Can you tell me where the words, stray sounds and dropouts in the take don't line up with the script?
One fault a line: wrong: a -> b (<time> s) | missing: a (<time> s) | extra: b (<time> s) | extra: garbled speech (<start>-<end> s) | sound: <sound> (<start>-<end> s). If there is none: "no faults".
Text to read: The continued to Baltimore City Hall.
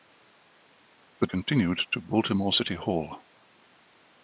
no faults